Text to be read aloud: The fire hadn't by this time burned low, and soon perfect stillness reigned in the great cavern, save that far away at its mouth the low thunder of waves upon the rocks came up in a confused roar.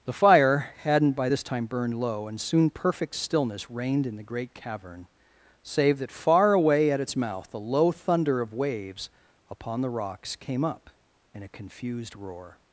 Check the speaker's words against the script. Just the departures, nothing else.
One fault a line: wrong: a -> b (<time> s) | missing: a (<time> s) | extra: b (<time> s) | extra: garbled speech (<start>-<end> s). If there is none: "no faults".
no faults